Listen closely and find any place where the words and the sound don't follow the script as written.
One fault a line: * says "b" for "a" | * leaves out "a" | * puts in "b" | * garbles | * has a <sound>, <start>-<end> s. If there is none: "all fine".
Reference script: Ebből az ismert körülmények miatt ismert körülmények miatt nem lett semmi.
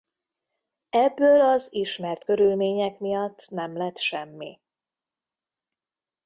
* leaves out "ismert körülmények miatt"